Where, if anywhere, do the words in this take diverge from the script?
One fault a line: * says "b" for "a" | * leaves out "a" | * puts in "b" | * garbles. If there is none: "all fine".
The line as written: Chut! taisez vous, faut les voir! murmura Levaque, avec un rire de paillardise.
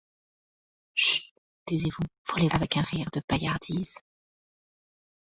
* leaves out "voir murmura Levaque"